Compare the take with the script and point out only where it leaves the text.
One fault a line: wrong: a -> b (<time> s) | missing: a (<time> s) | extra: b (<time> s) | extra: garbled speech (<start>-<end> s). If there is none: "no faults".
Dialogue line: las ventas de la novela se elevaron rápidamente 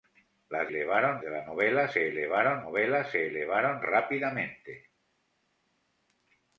wrong: ventas -> elevaron (0.7 s)
extra: novela se elevaron (2.6 s)